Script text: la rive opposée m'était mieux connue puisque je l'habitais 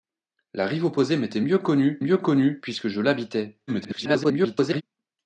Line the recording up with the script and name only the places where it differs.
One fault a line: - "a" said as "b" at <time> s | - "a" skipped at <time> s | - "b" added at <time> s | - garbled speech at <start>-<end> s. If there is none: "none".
- "mieux connue" added at 2.0 s
- garbled speech at 3.7-4.8 s